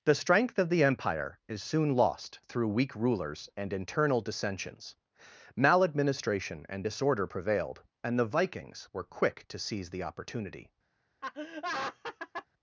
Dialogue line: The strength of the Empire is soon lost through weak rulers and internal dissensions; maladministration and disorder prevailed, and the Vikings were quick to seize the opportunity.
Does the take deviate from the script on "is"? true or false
false